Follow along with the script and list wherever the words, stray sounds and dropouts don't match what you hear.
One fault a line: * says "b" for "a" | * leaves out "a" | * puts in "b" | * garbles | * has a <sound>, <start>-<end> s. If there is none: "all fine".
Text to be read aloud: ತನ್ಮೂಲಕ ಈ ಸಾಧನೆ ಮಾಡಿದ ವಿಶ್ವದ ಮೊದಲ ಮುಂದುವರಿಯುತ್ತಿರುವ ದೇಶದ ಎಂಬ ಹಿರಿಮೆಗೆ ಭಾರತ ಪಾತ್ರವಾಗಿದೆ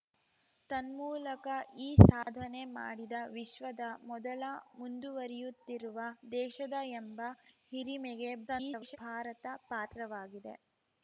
* has a dropout, 2.2-2.3 s
* garbles